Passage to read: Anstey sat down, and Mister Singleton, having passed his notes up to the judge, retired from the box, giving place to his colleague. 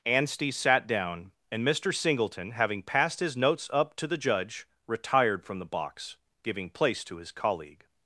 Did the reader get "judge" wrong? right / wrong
right